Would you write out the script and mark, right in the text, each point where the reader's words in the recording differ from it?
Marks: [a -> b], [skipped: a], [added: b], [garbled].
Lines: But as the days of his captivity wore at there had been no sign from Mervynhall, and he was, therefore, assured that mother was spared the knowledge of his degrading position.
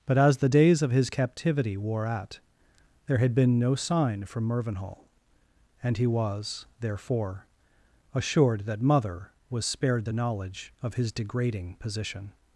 But as the days of his captivity wore at there had been no sign from Mervynhall, and he was, therefore, assured that mother was spared the knowledge of his degrading position.